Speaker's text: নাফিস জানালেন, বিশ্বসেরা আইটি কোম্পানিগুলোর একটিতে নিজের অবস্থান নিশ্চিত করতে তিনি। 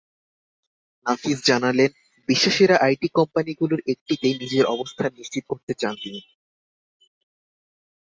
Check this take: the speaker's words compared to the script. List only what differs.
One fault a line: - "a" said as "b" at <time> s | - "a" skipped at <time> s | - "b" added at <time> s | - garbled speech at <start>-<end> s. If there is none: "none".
- "চান" added at 5.7 s